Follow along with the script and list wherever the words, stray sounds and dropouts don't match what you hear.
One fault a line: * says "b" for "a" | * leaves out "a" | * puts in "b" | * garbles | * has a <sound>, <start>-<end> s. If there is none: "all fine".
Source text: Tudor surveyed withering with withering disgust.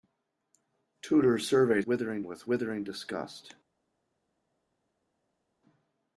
all fine